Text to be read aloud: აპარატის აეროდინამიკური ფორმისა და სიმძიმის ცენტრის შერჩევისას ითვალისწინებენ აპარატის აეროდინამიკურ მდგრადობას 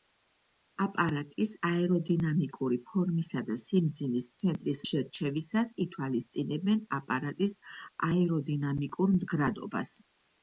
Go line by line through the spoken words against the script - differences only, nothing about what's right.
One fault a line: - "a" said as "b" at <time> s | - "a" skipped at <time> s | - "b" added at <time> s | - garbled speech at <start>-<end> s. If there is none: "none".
none